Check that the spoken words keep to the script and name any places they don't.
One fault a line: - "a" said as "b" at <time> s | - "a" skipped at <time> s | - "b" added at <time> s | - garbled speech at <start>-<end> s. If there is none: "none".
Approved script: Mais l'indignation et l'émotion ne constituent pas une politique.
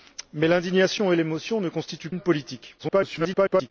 - "pas" skipped at 2.1 s
- garbled speech at 2.8-3.7 s